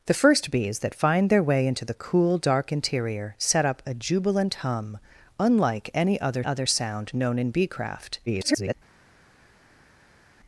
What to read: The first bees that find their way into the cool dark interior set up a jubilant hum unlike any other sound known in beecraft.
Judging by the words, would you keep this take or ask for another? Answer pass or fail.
fail